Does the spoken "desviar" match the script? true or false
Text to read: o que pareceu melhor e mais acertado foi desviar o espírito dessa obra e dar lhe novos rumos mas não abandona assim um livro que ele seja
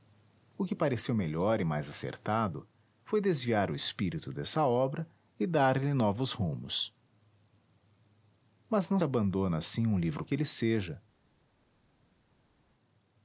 true